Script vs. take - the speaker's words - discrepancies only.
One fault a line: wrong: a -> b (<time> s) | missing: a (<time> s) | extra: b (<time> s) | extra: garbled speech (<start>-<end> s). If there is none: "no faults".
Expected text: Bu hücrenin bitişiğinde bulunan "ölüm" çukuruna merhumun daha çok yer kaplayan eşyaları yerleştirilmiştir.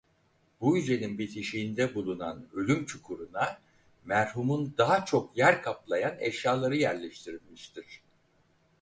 no faults